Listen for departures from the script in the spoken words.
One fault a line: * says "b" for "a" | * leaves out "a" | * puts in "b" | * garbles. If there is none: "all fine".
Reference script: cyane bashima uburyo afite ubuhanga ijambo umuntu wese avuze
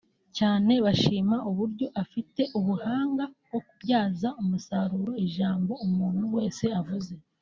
* puts in "bwo kubyaza umusaruro"